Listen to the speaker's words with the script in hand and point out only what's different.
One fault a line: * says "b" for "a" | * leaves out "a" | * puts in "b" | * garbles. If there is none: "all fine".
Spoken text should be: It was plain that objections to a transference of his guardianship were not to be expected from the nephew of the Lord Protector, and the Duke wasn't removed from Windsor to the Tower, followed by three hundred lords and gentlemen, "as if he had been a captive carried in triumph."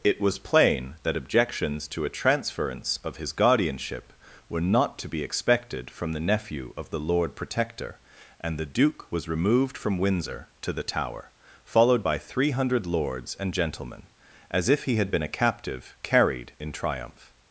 * says "was" for "wasn't"